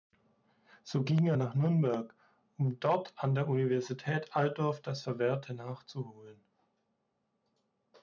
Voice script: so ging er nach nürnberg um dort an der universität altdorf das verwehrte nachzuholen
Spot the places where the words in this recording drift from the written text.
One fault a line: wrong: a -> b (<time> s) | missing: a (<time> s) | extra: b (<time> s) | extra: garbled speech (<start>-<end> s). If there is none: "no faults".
no faults